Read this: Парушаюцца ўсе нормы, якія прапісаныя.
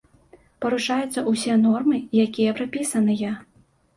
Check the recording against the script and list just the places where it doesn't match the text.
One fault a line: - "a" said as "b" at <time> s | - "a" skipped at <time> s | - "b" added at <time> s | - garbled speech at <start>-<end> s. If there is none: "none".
none